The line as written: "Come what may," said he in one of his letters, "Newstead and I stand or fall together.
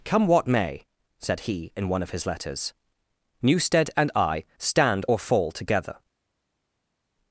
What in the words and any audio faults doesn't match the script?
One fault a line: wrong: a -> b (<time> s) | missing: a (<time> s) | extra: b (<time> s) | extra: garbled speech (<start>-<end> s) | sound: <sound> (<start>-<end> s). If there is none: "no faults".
no faults